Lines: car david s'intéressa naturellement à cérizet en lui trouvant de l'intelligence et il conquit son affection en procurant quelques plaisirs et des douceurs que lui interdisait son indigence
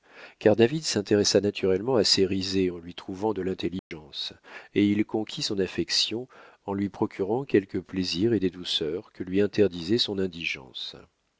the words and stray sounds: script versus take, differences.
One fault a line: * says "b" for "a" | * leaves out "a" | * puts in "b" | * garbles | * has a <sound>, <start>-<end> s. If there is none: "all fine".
* has a dropout, 3.8-3.9 s
* puts in "lui"